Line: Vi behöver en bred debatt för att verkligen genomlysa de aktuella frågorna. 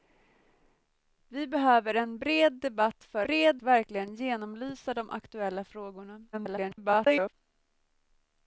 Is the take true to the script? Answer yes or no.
no